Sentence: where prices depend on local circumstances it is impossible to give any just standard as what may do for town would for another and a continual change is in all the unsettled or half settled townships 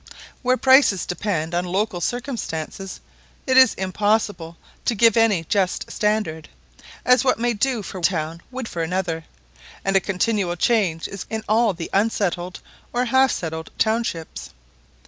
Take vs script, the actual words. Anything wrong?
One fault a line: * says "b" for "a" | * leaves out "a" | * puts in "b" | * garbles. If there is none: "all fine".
all fine